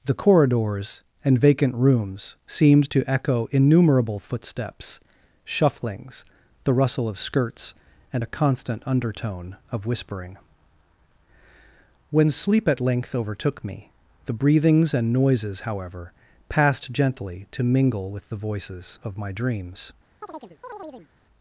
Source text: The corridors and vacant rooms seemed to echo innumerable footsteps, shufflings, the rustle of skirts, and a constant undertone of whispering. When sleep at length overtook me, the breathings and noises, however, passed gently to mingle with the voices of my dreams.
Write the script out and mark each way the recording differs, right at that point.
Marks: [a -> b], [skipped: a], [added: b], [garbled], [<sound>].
The corridors and vacant rooms seemed to echo innumerable footsteps, shufflings, the rustle of skirts, and a constant undertone of whispering. When sleep at length overtook me, the breathings and noises, however, passed gently to mingle with the voices of my dreams. [chirp]